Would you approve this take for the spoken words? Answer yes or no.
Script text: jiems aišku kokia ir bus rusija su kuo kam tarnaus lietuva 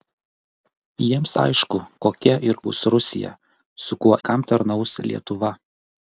yes